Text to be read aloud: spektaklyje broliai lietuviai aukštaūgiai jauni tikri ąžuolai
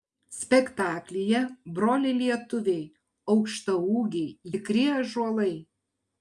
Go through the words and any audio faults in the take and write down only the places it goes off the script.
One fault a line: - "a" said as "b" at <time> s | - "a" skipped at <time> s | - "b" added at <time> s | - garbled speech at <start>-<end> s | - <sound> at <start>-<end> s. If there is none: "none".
- "jauni" skipped at 4.5 s